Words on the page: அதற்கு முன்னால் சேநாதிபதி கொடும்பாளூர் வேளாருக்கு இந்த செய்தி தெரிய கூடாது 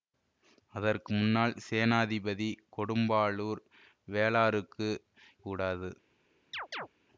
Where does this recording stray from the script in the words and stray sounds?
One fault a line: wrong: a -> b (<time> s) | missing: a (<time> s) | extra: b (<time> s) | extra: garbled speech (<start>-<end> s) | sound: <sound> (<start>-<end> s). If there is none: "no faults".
missing: இந்த செய்தி தெரிய (4.9 s)
sound: chirp (6.5-6.9 s)